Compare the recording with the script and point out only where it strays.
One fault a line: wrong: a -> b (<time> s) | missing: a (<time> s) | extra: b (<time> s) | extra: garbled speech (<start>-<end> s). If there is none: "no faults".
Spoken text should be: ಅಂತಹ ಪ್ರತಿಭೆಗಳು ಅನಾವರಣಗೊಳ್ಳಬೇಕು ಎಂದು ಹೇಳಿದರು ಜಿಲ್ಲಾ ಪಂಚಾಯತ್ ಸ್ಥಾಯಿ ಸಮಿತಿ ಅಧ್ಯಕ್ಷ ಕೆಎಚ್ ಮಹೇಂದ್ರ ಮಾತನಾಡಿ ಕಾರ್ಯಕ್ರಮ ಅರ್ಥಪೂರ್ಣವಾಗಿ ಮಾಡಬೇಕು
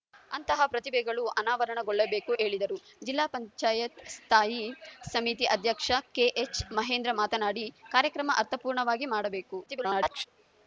missing: ಎಂದು (2.3 s)
extra: garbled speech (9.7-10.3 s)